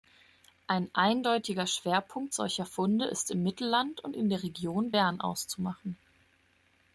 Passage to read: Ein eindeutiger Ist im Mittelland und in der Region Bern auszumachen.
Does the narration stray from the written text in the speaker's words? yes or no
yes